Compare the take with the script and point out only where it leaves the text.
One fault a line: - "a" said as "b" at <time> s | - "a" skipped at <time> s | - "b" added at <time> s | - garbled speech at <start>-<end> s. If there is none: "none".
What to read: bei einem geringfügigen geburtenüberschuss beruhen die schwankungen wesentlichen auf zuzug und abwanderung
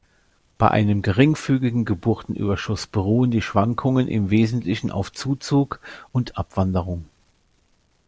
- "im" added at 4.1 s